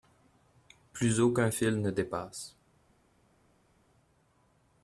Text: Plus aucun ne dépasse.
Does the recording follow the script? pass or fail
fail